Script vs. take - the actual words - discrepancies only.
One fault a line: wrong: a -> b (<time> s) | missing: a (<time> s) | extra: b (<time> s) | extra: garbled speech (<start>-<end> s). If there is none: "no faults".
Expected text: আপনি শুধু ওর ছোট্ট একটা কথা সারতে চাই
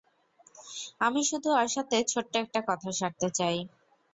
wrong: আপনি -> আমি (1.0 s)
extra: সাথে (1.8 s)